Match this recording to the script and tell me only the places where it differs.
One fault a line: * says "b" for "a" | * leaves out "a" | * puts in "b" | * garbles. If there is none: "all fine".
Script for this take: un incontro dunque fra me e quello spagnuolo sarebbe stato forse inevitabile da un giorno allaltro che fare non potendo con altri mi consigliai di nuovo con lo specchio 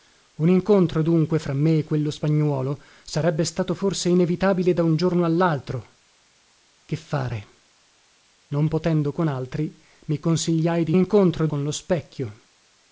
* says "incontro" for "nuovo"